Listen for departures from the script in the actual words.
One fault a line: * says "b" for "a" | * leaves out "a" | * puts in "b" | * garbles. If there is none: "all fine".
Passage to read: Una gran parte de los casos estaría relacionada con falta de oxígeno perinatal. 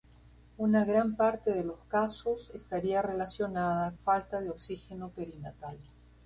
* leaves out "con"